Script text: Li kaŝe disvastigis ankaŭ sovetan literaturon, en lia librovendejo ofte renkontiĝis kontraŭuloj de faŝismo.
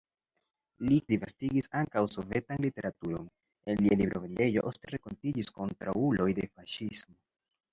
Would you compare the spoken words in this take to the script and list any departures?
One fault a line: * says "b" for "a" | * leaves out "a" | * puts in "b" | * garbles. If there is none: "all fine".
* leaves out "kaŝe"